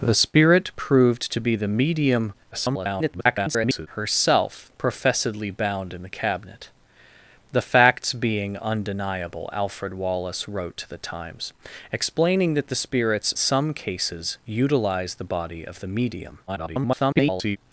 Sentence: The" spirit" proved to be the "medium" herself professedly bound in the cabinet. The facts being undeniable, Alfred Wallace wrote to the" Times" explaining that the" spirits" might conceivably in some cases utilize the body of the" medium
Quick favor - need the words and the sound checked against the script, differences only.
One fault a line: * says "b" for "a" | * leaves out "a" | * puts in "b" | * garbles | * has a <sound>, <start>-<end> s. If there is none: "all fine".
* garbles
* leaves out "might conceivably in"
* garbles